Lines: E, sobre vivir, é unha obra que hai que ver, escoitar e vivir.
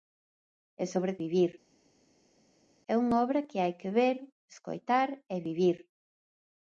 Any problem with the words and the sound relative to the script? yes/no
no